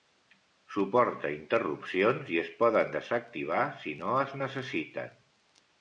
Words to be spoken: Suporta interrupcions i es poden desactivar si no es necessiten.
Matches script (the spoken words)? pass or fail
pass